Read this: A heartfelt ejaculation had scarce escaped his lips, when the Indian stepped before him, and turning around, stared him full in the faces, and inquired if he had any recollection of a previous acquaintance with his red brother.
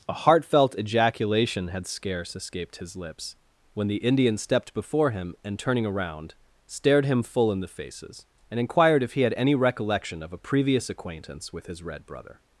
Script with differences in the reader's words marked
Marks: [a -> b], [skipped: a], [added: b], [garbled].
A heartfelt ejaculation had scarce escaped his lips, when the Indian stepped before him, and turning around, stared him full in the faces, and inquired if he had any recollection of a previous acquaintance with his red brother.